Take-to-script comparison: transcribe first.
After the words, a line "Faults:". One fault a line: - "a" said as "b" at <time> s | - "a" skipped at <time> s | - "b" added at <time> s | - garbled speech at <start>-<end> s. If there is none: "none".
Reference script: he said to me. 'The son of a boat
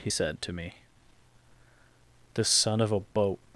he said to me. 'The son of a boat
Faults:
none